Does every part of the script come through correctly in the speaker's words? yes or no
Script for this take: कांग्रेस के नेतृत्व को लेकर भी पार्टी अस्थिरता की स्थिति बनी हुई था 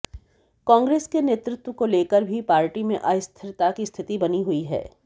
no